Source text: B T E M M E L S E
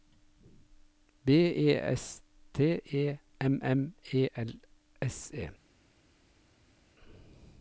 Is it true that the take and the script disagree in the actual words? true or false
true